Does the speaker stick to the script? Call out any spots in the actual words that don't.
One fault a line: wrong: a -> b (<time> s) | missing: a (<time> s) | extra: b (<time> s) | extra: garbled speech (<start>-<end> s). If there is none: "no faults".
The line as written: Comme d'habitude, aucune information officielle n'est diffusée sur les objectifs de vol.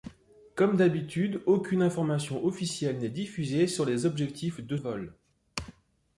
no faults